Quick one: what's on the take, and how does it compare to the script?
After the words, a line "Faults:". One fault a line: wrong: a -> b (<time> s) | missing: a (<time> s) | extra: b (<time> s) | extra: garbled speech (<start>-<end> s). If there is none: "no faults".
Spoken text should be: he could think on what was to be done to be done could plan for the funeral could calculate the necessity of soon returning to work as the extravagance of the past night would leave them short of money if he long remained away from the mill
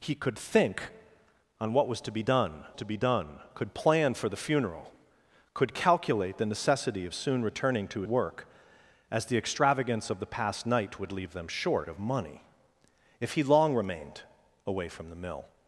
he could think on what was to be done to be done could plan for the funeral could calculate the necessity of soon returning to work as the extravagance of the past night would leave them short of money if he long remained away from the mill
Faults:
no faults